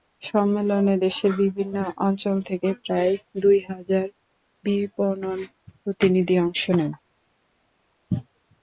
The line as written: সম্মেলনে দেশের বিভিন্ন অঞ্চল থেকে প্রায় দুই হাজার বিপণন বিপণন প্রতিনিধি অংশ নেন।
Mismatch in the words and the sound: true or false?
true